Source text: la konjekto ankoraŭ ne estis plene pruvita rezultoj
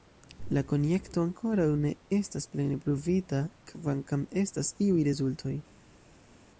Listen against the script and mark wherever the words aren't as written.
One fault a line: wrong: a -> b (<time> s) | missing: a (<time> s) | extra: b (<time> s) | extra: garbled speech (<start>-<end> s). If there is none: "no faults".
wrong: estis -> estas (2.2 s)
extra: kvankam estas iuj (3.7 s)